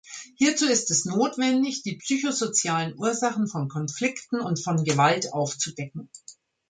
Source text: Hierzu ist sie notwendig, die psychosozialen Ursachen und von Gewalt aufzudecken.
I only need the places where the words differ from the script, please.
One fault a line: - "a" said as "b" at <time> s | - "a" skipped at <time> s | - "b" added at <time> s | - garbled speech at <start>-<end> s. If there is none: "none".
- "sie" said as "es" at 0.9 s
- "von Konflikten" added at 3.5 s